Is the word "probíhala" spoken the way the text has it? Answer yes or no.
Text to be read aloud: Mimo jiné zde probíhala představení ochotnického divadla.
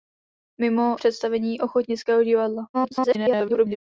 no